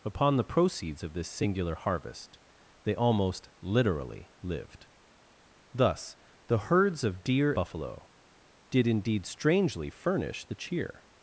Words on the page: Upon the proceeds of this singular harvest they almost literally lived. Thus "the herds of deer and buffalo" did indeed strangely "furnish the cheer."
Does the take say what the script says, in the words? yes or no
no